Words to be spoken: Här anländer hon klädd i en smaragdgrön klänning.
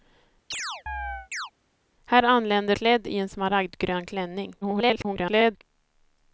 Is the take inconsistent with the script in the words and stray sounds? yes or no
yes